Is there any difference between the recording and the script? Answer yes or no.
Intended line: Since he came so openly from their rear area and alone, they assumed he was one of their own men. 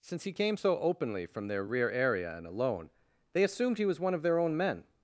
no